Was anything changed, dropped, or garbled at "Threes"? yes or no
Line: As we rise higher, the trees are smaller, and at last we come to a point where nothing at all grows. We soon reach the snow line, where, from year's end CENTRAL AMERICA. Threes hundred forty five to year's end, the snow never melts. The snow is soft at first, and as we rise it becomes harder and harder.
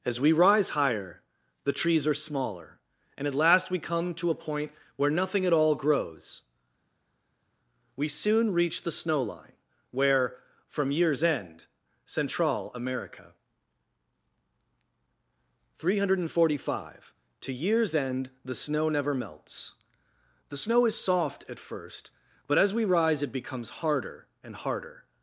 yes